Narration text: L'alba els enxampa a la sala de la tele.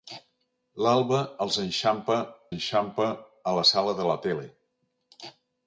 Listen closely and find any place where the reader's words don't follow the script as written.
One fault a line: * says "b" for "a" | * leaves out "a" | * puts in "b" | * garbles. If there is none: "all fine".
* puts in "enxampa"